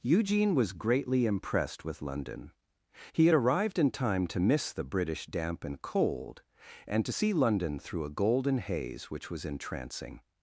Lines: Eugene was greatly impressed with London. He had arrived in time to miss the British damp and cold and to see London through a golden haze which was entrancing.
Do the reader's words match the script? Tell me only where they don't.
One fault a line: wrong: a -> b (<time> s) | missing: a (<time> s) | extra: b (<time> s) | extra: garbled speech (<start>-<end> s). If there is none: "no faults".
no faults